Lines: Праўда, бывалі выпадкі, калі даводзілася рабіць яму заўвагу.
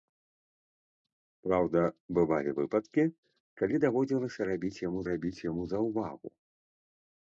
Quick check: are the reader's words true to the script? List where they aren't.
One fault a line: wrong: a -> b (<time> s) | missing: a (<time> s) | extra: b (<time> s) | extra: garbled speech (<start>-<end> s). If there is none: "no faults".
extra: рабіць яму (5.1 s)